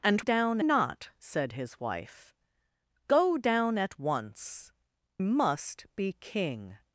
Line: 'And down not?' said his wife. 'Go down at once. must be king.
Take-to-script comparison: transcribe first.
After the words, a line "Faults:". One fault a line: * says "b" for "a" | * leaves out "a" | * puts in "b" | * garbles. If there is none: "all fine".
'And down not?' said his wife. 'Go down at once. must be king.
Faults:
all fine